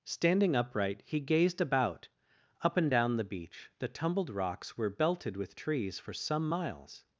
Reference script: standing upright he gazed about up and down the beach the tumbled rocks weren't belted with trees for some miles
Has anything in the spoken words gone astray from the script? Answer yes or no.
yes